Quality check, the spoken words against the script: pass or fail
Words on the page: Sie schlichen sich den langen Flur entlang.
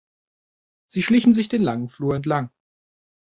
pass